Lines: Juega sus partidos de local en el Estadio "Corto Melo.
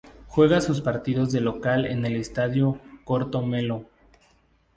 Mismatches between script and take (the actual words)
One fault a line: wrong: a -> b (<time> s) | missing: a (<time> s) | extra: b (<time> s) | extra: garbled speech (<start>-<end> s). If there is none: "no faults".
no faults